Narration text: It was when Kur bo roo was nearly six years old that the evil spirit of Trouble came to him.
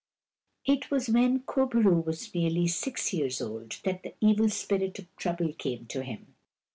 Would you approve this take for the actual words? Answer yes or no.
yes